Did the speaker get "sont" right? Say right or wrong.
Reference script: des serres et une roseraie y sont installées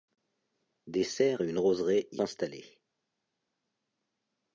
wrong